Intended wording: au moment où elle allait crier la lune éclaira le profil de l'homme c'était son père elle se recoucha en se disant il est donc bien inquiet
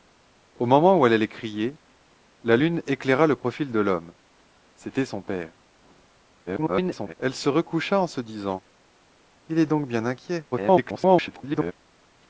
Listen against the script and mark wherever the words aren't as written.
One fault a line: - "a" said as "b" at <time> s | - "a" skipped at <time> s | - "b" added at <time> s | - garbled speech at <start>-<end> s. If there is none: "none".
- garbled speech at 6.5-7.1 s
- garbled speech at 10.5-11.7 s